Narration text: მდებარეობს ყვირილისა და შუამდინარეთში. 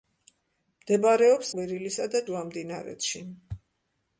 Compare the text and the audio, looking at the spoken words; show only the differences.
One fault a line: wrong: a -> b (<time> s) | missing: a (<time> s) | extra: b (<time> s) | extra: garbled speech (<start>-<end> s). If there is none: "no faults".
no faults